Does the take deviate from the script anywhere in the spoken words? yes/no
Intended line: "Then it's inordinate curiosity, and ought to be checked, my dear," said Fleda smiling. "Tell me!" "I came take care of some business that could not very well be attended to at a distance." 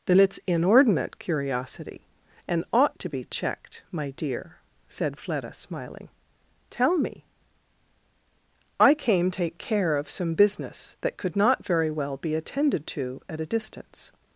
no